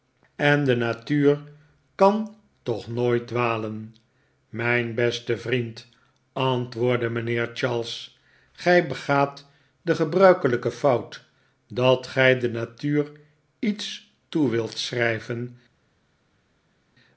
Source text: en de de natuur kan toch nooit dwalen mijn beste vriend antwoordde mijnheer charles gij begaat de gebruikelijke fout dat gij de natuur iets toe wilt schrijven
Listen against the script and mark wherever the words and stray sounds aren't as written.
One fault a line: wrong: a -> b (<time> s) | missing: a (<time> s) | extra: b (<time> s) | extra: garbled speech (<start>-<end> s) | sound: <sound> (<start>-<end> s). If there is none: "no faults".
missing: de (0.8 s)